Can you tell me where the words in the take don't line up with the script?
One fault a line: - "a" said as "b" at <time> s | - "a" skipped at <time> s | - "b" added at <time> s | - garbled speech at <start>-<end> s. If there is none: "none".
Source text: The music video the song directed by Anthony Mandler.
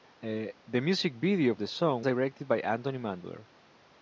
none